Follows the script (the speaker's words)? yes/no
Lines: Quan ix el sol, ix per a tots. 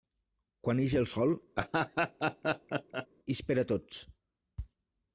yes